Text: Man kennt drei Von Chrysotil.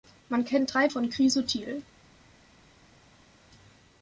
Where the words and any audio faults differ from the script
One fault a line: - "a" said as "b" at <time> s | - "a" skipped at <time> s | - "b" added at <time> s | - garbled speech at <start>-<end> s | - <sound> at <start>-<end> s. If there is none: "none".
none